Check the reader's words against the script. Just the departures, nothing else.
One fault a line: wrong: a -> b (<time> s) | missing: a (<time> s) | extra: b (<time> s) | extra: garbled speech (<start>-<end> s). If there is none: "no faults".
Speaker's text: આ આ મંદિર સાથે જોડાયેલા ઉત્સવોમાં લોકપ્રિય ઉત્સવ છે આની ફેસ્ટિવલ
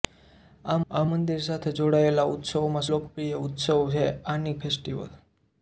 no faults